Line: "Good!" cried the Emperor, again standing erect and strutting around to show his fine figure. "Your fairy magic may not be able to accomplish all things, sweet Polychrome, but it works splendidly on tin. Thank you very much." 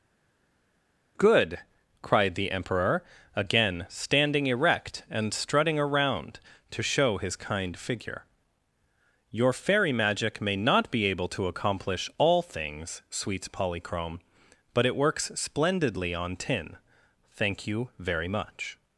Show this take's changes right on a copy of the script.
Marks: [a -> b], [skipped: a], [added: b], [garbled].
"Good!" cried the Emperor, again standing erect and strutting around to show his [fine -> kind] figure. "Your fairy magic may not be able to accomplish all things, [sweet -> sweets] Polychrome, but it works splendidly on tin. Thank you very much."